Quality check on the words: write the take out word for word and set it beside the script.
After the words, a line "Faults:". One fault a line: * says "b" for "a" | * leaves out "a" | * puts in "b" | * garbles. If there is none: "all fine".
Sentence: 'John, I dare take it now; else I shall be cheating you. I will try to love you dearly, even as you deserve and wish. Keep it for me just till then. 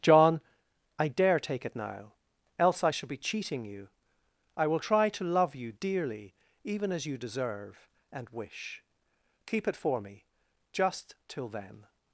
'John, I dare take it now; else I shall be cheating you. I will try to love you dearly, even as you deserve and wish. Keep it for me just till then.
Faults:
all fine